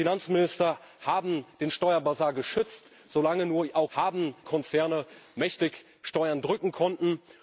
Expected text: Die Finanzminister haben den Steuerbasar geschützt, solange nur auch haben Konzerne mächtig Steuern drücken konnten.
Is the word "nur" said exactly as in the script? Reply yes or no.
yes